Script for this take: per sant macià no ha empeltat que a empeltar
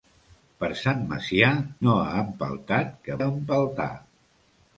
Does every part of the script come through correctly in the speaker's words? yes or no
yes